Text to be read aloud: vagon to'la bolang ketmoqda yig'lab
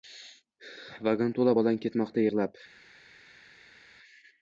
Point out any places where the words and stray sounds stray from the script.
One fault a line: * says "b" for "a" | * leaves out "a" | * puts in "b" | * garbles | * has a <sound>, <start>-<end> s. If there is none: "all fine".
all fine